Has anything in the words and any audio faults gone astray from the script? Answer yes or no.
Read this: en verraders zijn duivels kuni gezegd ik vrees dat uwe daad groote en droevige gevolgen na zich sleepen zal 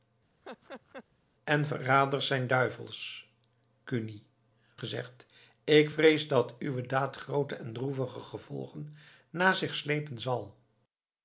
yes